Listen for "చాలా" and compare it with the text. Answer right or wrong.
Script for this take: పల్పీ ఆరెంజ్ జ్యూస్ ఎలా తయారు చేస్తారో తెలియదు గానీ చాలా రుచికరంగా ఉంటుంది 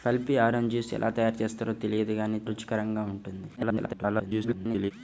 wrong